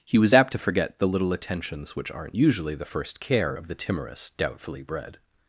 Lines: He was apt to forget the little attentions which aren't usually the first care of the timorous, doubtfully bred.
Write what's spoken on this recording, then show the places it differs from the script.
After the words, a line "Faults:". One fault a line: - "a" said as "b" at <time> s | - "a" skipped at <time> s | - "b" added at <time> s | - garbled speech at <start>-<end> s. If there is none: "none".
He was apt to forget the little attentions which aren't usually the first care of the timorous, doubtfully bred.
Faults:
none